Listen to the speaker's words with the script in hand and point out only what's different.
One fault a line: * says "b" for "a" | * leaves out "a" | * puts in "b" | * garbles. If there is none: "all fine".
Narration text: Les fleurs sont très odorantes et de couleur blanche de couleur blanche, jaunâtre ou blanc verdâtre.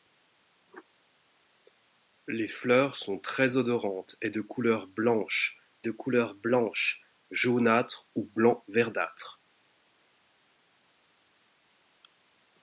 all fine